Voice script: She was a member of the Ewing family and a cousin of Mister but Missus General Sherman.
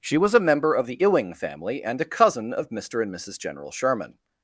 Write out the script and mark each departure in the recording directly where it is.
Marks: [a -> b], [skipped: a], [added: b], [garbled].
She was a member of the Ewing family and a cousin of Mister [but -> and] Missus General Sherman.